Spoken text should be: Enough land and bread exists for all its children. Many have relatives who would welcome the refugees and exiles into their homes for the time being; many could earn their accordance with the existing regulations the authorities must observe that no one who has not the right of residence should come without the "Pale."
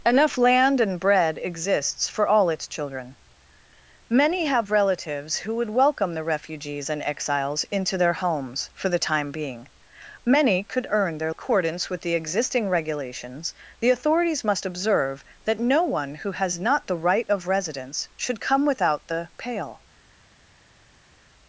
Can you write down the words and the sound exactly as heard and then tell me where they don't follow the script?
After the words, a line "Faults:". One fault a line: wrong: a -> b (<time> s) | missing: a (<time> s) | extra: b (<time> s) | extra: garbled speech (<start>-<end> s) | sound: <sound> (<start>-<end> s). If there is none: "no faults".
Enough land and bread exists for all its children. Many have relatives who would welcome the refugees and exiles into their homes for the time being; many could earn their accordance with the existing regulations the authorities must observe that no one who has not the right of residence should come without the "Pale."
Faults:
no faults